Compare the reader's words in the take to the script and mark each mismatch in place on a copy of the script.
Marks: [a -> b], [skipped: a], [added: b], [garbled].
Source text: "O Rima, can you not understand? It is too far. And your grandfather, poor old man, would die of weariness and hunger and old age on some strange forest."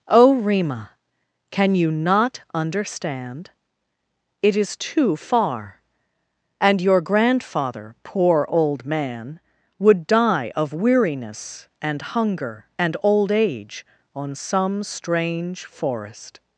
"O Rima, can you not understand? It is too far. And your grandfather, poor old man, would die of weariness and hunger and old age on some strange forest."